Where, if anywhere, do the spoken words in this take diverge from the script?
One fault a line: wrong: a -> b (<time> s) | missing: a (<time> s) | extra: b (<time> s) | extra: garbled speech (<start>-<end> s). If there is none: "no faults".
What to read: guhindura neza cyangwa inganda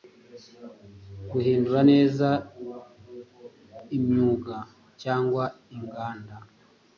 extra: imyuga (4.0 s)